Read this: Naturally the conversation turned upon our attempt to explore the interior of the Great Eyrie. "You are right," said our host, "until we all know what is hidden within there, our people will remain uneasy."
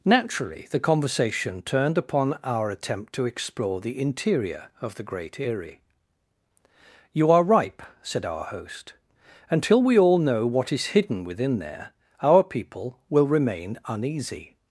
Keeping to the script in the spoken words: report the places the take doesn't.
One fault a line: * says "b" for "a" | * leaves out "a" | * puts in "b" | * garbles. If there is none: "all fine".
* says "ripe" for "right"